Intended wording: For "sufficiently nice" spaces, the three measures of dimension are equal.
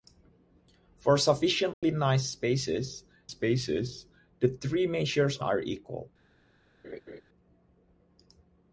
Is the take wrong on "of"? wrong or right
wrong